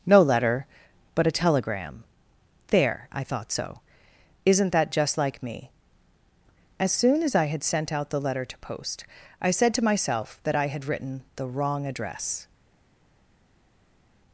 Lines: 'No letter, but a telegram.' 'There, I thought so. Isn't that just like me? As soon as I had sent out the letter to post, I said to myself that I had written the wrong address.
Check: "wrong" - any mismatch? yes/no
no